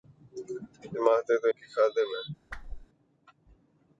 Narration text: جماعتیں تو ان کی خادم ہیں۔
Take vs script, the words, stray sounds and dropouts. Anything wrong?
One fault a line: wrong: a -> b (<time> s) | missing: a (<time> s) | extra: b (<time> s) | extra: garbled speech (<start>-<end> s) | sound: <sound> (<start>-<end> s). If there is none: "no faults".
missing: ان (1.5 s)
sound: whoosh (2.5-2.9 s)